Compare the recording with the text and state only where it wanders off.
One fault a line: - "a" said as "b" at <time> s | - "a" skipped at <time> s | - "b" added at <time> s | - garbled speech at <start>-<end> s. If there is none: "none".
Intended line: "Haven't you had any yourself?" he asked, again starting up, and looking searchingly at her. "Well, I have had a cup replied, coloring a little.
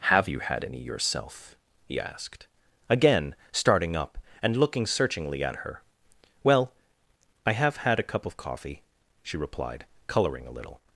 - "Haven't" said as "Have" at 0.1 s
- "of coffee she" added at 8.2 s